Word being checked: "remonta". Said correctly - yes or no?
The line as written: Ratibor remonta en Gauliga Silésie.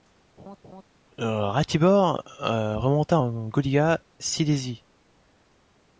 yes